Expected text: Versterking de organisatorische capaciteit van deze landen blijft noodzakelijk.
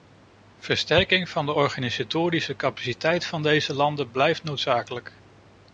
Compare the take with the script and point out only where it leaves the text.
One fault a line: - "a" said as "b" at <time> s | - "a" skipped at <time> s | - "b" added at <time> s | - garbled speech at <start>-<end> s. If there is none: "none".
- "van" added at 1.3 s